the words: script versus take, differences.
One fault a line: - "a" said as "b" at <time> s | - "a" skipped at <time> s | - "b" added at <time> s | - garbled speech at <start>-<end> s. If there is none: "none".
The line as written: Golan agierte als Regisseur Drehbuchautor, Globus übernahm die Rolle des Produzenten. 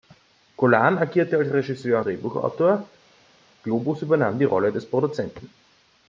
none